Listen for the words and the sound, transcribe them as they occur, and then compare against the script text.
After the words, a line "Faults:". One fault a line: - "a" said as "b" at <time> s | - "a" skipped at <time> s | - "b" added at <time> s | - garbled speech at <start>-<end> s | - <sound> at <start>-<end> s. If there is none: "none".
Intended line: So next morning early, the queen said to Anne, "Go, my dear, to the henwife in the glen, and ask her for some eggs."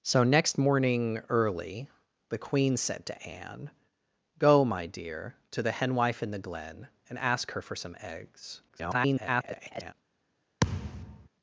So next morning early, the queen said to Anne, "Go, my dear, to the henwife in the glen, and ask her for some eggs." [garbled]
Faults:
- garbled speech at 8.7-9.9 s
- thud at 10.6-11.3 s